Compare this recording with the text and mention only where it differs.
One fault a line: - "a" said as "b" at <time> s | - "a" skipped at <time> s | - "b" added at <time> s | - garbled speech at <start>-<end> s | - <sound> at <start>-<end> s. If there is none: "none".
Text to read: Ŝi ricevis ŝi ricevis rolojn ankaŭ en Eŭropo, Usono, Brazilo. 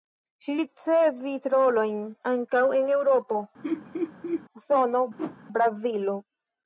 - "ŝi ricevis" skipped at 1.5 s
- laugh at 3.6-4.4 s
- whoosh at 5.2-5.4 s